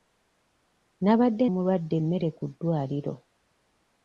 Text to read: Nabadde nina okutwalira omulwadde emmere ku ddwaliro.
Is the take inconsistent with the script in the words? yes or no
yes